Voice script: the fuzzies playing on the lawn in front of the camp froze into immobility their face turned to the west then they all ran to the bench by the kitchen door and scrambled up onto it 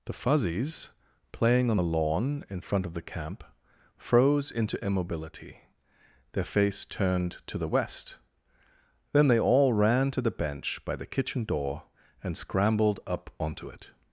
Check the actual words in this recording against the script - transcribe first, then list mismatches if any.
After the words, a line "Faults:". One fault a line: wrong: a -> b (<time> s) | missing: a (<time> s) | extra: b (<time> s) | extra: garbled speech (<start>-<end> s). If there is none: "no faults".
the fuzzies playing on the lawn in front of the camp froze into immobility their face turned to the west then they all ran to the bench by the kitchen door and scrambled up onto it
Faults:
no faults